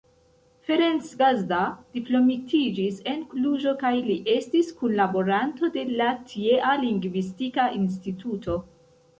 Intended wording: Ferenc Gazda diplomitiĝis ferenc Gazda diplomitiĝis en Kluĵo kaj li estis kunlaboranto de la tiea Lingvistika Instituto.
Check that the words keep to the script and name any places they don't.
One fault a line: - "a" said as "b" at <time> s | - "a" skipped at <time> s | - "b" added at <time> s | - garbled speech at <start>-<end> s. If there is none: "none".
- "ferenc Gazda diplomitiĝis" skipped at 3.0 s